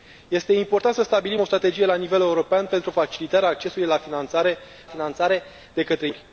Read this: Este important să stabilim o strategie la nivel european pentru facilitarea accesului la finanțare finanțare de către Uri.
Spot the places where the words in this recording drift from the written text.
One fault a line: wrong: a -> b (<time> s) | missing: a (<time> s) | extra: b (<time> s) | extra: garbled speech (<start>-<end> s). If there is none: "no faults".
no faults